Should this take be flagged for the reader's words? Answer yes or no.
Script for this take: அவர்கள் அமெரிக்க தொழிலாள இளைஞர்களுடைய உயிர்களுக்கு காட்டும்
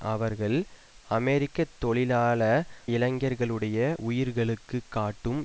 no